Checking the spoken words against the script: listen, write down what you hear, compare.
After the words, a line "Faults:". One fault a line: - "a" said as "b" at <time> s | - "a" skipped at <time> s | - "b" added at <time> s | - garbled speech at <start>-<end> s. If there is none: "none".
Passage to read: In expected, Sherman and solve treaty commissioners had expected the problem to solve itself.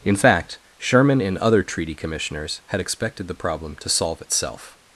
In fact, Sherman and other treaty commissioners had expected the problem to solve itself.
Faults:
- "expected" said as "fact" at 0.1 s
- "solve" said as "other" at 1.4 s